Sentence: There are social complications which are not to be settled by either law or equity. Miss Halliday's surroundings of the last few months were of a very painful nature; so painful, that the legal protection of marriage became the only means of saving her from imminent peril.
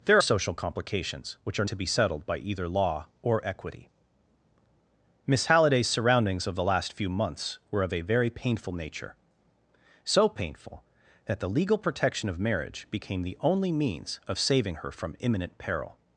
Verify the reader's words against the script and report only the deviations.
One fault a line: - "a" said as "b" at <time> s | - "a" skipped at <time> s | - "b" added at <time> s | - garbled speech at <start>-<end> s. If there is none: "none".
- "are" skipped at 0.2 s
- "not" skipped at 1.7 s